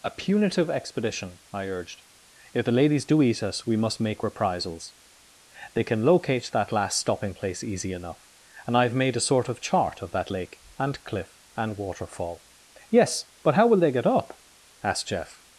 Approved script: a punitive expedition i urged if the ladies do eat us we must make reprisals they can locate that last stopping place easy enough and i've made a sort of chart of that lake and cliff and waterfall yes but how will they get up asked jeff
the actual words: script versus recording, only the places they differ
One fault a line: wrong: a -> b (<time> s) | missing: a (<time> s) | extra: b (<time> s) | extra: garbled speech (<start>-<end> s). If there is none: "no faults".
no faults